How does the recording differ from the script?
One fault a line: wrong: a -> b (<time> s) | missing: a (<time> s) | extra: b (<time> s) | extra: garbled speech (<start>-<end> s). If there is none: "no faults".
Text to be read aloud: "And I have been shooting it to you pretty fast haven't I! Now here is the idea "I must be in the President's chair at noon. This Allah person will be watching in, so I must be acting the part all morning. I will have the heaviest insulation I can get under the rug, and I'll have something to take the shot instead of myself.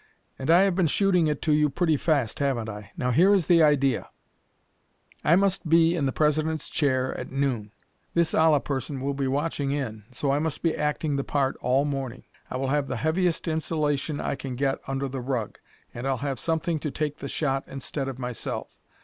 no faults